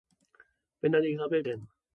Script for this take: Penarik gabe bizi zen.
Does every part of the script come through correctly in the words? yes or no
no